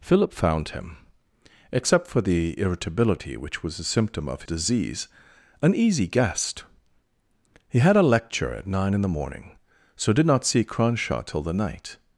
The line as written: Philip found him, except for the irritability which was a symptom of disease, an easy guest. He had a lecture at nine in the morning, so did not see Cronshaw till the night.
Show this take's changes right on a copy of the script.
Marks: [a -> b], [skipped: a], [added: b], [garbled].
Philip found him, except for the irritability which was a symptom of disease, an easy guest. He had a lecture at nine in the morning, so did not see Cronshaw till the night.